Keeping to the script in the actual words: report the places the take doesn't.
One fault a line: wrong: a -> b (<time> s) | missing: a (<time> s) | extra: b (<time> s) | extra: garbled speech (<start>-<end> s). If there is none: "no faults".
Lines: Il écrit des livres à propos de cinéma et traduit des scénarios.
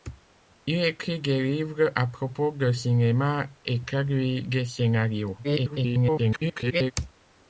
extra: garbled speech (5.4-6.9 s)